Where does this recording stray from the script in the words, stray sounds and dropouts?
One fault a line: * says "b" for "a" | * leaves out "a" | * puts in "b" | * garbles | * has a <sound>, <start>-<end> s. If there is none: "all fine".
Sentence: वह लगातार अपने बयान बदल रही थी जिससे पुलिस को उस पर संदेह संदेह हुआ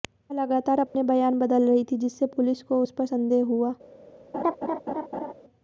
* has a dropout, 0.9-0.9 s
* leaves out "संदेह"
* has a laugh, 4.3-5.3 s